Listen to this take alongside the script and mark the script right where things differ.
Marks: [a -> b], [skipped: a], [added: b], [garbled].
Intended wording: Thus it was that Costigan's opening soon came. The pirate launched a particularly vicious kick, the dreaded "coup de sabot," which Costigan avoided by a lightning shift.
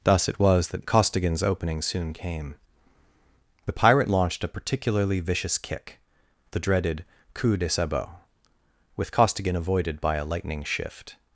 Thus it was that Costigan's opening soon came. The pirate launched a particularly vicious kick, the dreaded "coup de sabot," [which -> with] Costigan avoided by a lightning shift.